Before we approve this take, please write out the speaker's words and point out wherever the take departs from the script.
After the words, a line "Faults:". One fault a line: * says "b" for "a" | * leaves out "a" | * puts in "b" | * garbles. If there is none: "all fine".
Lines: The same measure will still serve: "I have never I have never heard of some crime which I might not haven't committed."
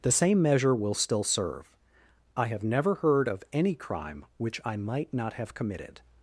The same measure will still serve: "I have never heard of any crime which I might not have committed."
Faults:
* leaves out "I have never"
* says "any" for "some"
* says "have" for "haven't"